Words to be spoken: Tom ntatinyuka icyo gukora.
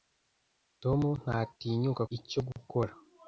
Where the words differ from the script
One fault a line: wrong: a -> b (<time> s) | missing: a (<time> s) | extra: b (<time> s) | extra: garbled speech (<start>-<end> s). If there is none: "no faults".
no faults